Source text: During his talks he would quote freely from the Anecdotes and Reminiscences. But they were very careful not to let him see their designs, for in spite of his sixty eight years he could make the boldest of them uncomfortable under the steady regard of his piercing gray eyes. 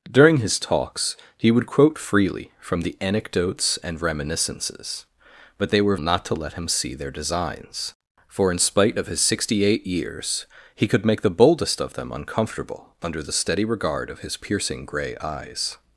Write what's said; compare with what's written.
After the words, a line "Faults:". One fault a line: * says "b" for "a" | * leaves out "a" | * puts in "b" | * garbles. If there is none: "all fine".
During his talks he would quote freely from the Anecdotes and Reminiscences. But they were not to let him see their designs, for in spite of his sixty eight years he could make the boldest of them uncomfortable under the steady regard of his piercing gray eyes.
Faults:
* leaves out "very careful"